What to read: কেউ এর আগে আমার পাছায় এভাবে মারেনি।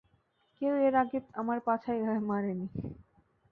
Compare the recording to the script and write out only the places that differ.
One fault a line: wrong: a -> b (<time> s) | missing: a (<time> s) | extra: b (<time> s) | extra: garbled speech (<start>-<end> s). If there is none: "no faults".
no faults